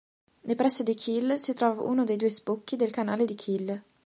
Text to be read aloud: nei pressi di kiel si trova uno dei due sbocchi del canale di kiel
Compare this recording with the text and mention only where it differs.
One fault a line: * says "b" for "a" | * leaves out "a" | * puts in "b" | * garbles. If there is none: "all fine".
all fine